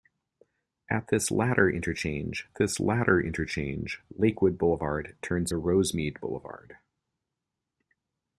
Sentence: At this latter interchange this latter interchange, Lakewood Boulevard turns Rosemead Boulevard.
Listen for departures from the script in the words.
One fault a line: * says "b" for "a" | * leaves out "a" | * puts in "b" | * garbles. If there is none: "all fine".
all fine